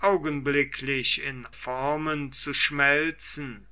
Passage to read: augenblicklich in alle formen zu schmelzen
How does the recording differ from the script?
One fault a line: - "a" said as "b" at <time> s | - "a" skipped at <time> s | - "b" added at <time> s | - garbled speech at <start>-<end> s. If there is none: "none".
- "alle" skipped at 1.5 s